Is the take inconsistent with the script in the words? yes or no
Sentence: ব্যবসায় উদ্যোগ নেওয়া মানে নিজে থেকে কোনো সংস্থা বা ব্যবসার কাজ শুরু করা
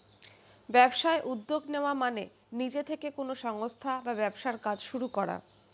no